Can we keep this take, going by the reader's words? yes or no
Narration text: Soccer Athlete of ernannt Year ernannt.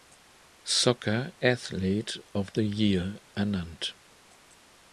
no